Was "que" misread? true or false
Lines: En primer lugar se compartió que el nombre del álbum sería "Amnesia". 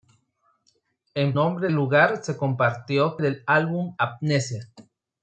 true